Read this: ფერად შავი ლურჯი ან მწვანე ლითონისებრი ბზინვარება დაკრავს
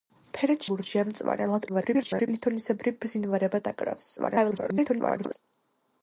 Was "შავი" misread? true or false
true